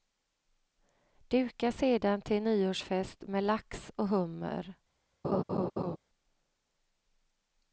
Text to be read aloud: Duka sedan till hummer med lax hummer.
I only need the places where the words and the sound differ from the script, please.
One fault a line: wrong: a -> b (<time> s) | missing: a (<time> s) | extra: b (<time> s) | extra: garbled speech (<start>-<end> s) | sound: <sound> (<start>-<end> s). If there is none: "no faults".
wrong: hummer -> nyårsfest (2.4 s)
extra: och (4.0 s)
sound: laugh (5.2-6.0 s)